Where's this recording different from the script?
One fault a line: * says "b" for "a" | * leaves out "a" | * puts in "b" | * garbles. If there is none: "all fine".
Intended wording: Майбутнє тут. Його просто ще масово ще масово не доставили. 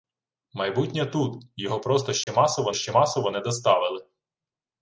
all fine